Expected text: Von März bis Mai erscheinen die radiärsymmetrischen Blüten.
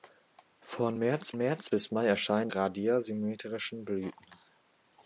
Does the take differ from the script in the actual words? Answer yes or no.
yes